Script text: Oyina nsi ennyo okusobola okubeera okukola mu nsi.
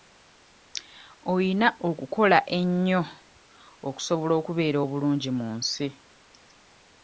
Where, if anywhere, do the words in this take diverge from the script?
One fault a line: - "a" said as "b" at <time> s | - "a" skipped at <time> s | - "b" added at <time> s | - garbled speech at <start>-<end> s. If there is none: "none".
- "nsi" said as "okukola" at 1.9 s
- "okukola" said as "obulungi" at 4.8 s